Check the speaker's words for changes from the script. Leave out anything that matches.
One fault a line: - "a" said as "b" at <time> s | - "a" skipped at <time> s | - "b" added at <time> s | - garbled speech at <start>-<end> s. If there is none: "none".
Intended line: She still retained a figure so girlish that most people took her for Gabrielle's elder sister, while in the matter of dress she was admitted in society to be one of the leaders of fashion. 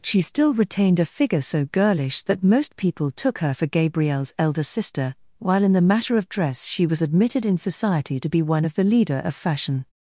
- "leaders" said as "leader" at 8.8 s